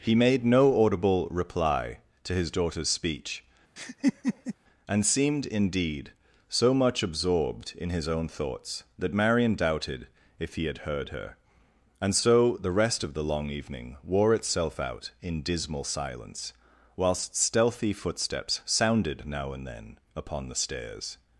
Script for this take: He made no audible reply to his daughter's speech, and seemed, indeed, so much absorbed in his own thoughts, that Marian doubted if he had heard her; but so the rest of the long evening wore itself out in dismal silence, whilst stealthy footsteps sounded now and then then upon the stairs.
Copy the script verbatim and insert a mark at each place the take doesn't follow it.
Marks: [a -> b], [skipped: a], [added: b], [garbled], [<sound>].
He made no audible reply to his daughter's speech, [laugh] and seemed, indeed, so much absorbed in his own thoughts, that Marian doubted if he had heard her; [but -> and] so the rest of the long evening wore itself out in dismal silence, whilst stealthy footsteps sounded now and then [skipped: then] upon the stairs.